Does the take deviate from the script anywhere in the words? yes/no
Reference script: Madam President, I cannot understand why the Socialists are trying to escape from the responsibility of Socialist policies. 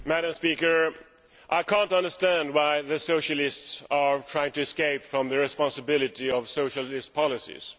no